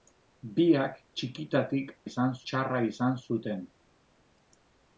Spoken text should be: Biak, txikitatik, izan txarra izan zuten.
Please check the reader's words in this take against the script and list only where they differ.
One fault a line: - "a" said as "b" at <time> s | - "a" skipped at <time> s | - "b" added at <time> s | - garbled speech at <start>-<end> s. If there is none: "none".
none